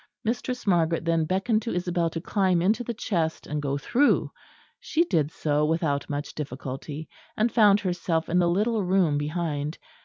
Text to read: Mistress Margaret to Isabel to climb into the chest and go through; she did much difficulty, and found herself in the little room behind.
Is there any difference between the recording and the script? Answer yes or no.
yes